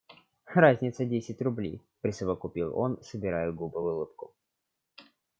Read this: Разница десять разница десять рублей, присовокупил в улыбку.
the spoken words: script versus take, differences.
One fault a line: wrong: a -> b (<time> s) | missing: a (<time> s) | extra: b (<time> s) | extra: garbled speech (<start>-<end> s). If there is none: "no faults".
wrong: разница десять рублей присовокупил -> рублей присовокупил он собирая губы (1.4 s)